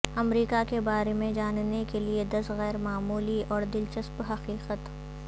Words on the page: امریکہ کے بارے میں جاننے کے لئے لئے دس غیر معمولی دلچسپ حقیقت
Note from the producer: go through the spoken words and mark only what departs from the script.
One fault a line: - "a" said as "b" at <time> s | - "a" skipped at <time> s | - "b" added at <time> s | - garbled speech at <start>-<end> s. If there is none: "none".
- "لئے" skipped at 2.2 s
- "اور" added at 3.5 s